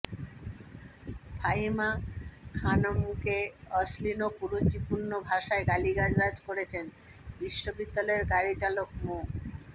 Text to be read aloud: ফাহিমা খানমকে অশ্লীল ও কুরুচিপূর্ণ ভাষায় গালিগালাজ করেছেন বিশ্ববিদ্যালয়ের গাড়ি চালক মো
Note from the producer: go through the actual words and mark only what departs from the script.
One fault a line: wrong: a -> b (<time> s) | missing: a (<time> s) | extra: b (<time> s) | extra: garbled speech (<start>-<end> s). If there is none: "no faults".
no faults